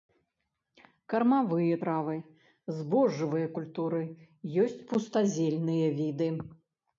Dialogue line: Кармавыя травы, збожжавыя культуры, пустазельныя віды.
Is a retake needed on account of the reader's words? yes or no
yes